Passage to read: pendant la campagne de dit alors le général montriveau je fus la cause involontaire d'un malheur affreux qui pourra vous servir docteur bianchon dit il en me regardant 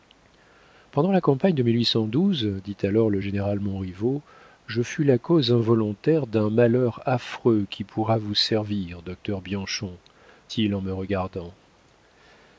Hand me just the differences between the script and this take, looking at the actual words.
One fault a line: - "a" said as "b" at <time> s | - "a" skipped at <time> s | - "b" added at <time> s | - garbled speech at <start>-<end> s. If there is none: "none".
- "dit" skipped at 10.0 s